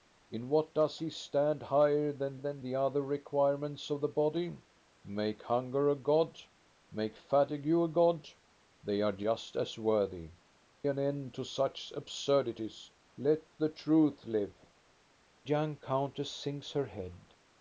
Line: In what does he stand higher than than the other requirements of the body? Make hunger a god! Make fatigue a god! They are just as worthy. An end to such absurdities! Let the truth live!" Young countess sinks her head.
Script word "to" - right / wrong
right